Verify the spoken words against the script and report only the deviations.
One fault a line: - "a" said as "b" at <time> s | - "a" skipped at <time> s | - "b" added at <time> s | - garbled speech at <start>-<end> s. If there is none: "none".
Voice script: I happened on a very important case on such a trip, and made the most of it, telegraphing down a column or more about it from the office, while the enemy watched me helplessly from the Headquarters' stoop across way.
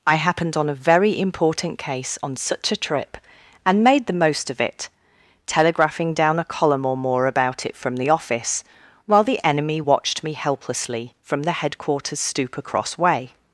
none